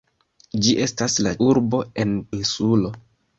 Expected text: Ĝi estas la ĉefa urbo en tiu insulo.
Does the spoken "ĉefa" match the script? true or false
false